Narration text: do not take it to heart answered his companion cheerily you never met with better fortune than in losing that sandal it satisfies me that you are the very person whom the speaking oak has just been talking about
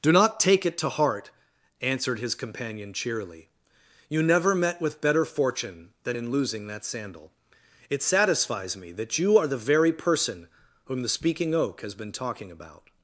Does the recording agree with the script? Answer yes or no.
no